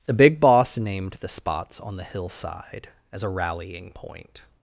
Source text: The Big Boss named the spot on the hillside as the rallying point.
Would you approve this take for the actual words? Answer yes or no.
no